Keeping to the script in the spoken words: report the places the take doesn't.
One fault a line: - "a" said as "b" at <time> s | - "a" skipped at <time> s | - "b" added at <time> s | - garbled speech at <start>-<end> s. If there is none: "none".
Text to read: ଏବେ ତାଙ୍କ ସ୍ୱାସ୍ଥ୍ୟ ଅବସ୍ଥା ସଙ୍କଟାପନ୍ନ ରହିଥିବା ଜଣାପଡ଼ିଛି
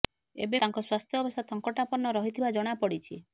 none